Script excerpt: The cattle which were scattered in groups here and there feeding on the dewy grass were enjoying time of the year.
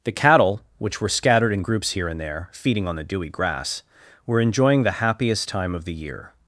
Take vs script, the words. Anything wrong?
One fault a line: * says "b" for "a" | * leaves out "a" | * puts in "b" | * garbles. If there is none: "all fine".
* puts in "the happiest"